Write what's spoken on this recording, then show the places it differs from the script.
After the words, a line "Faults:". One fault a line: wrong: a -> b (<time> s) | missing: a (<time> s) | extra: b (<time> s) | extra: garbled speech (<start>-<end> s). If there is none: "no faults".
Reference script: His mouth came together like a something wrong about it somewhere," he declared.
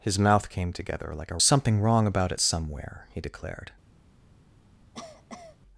His mouth came together like a something wrong about it somewhere," he declared.
Faults:
no faults